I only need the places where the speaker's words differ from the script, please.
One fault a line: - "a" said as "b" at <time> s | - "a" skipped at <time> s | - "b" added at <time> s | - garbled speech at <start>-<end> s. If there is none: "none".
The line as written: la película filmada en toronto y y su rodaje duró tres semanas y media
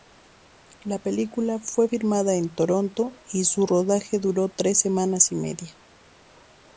- "fue" added at 1.6 s
- "y" skipped at 3.4 s